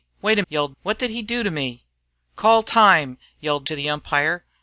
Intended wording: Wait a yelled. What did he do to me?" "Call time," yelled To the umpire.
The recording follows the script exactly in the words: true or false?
true